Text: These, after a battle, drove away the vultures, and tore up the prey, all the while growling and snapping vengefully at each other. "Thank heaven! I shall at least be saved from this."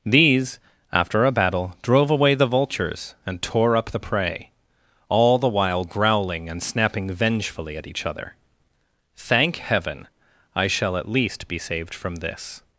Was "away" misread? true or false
false